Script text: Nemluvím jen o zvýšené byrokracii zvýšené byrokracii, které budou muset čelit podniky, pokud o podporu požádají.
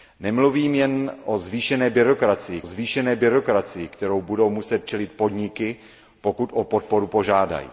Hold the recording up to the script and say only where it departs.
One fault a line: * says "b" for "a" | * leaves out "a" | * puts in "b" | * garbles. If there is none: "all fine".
all fine